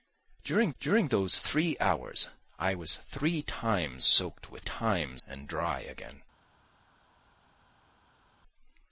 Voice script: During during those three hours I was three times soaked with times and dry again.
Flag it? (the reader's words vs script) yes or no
no